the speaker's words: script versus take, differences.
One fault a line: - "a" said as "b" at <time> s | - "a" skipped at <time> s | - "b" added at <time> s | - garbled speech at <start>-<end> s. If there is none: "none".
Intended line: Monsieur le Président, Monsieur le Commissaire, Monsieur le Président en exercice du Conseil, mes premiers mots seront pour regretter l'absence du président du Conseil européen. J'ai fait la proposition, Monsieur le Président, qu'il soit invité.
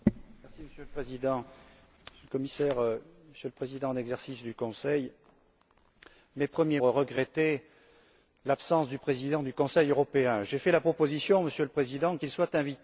- "mots seront pour" skipped at 6.8 s